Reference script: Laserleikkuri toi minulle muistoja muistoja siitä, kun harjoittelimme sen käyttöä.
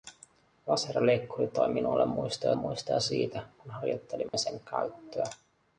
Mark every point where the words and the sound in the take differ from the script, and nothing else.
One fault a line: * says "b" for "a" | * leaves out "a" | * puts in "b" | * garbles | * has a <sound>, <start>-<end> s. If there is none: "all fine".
* has a dropout, 4.3-4.3 s